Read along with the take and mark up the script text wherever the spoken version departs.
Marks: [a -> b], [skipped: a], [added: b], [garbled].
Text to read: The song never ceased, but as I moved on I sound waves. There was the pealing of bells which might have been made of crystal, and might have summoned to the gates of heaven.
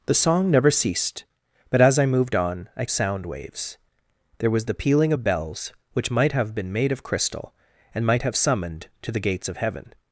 The song never ceased, but as I moved on I sound waves. There was the pealing of bells which might have been made of crystal, and might have summoned to the gates of heaven.